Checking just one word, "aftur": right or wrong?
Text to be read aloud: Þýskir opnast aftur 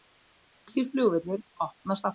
right